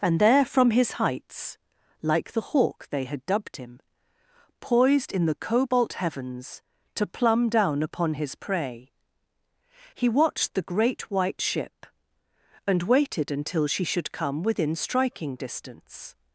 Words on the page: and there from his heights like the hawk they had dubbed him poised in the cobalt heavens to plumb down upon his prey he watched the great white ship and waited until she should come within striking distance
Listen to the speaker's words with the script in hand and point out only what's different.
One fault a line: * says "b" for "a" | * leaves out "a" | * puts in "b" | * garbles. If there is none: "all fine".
all fine